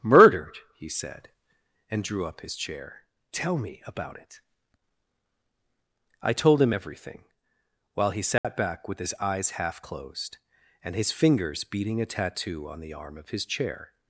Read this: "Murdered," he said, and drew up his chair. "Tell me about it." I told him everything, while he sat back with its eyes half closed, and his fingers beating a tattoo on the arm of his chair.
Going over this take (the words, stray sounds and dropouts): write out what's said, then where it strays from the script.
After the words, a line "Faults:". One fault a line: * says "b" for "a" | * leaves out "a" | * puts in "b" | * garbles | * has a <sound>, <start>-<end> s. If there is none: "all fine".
"Murdered," he said, and drew up his chair. "Tell me about it." I told him everything, while he sat back with his eyes half closed, and his fingers beating a tattoo on the arm of his chair.
Faults:
* has a dropout, 8.4-8.4 s
* says "his" for "its"